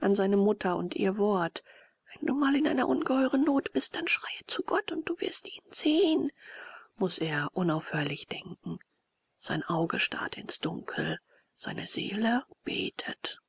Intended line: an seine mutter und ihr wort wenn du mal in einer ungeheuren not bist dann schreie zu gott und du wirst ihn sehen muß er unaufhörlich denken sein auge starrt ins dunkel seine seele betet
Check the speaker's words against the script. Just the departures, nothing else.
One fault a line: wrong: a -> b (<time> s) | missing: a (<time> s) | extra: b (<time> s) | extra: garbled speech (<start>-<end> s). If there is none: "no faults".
no faults